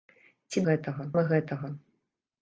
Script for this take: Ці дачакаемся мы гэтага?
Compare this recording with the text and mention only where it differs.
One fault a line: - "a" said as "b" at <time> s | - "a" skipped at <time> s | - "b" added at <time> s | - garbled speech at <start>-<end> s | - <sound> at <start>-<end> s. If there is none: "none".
- "дачакаемся" said as "гэтага" at 0.7 s